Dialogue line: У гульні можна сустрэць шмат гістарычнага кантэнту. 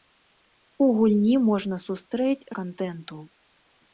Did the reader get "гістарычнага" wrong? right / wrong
wrong